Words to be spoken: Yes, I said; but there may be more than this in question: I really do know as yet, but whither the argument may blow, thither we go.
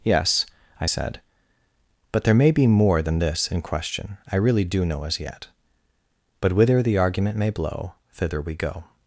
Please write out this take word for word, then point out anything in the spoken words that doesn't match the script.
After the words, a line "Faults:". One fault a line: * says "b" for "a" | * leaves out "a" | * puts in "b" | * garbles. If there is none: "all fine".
Yes, I said; but there may be more than this in question: I really do know as yet, but whither the argument may blow, thither we go.
Faults:
all fine